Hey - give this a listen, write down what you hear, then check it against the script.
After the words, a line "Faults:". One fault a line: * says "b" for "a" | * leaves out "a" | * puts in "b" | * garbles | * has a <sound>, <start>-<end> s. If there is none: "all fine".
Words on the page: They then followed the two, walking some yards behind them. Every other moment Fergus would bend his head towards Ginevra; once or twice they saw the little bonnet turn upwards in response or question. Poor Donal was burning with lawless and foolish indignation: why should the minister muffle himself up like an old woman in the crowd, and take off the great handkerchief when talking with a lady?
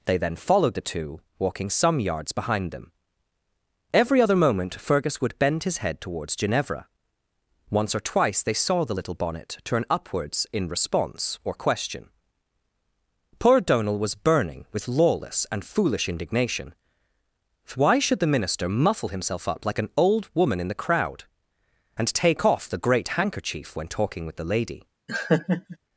They then followed the two, walking some yards behind them. Every other moment Fergus would bend his head towards Ginevra; once or twice they saw the little bonnet turn upwards in response or question. Poor Donal was burning with lawless and foolish indignation: why should the minister muffle himself up like an old woman in the crowd, and take off the great handkerchief when talking with the lady?
Faults:
* says "the" for "a"
* has a laugh, 25.1-25.8 s